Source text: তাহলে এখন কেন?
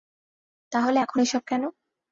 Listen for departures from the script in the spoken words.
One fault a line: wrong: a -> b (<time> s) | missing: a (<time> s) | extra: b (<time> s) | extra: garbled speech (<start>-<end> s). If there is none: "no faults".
extra: এসব (1.2 s)